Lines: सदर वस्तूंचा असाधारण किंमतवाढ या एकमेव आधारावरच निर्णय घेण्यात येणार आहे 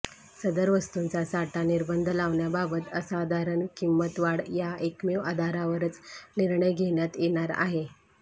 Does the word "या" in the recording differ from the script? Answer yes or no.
no